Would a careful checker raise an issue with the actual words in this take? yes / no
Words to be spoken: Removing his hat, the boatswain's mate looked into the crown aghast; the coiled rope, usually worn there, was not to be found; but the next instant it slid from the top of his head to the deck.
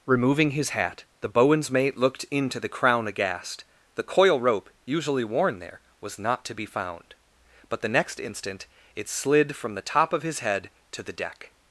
yes